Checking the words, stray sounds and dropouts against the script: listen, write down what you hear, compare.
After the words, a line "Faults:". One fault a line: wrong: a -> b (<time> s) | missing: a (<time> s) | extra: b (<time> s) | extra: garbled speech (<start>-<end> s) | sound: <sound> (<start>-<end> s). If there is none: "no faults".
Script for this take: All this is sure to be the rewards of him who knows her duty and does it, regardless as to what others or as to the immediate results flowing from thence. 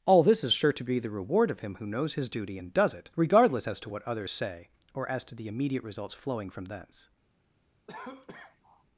All this is sure to be the reward of him who knows his duty and does it, regardless as to what others say or as to the immediate results flowing from thence.
Faults:
wrong: rewards -> reward (1.1 s)
wrong: her -> his (2.1 s)
extra: say (4.3 s)
sound: cough (7.9-8.8 s)